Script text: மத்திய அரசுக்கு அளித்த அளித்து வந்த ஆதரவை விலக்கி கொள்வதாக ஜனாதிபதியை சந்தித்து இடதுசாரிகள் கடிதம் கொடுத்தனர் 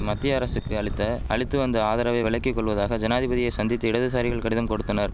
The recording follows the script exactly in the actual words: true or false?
true